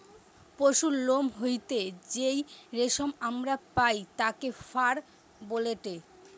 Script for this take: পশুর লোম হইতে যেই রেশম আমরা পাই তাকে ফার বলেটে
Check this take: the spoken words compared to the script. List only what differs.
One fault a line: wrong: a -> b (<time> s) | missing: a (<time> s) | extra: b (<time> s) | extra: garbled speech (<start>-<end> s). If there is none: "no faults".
no faults